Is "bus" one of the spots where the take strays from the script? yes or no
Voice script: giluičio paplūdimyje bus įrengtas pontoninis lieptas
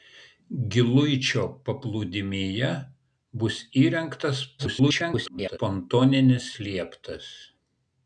no